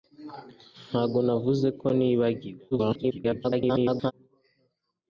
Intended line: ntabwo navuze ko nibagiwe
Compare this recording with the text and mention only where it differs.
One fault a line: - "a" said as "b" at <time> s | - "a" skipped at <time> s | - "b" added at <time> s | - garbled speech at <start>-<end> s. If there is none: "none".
- garbled speech at 2.7-4.1 s